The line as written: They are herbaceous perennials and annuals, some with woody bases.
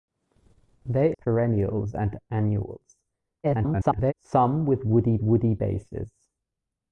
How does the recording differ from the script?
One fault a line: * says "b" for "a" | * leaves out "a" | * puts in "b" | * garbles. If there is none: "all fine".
* leaves out "are herbaceous"
* garbles
* puts in "woody"